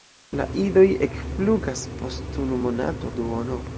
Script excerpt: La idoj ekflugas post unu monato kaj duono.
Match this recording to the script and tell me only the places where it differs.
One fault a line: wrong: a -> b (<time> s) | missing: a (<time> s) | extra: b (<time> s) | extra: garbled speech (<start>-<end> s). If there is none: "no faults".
missing: kaj (3.1 s)